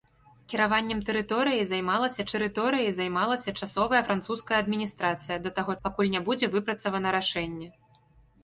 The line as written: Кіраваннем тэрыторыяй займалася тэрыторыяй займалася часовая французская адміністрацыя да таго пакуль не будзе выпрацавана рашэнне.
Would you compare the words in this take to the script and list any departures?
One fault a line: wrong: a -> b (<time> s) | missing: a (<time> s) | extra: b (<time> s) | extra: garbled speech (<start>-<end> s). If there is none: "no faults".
no faults